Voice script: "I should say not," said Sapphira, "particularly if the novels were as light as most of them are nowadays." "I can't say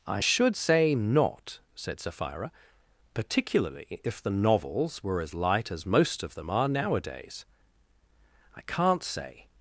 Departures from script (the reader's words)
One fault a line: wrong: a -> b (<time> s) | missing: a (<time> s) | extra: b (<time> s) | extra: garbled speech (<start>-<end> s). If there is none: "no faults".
no faults